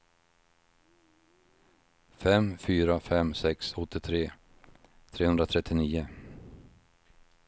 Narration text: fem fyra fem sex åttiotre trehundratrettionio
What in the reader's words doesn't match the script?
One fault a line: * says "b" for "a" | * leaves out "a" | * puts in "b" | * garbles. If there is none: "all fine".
all fine